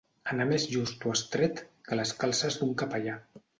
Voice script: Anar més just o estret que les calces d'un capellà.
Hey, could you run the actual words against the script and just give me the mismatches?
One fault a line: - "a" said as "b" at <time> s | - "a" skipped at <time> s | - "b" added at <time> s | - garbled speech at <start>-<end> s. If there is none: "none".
none